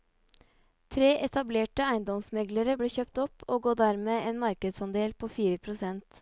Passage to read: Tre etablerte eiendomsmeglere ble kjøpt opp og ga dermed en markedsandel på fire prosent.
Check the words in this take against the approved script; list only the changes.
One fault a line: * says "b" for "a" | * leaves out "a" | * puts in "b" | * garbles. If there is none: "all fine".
all fine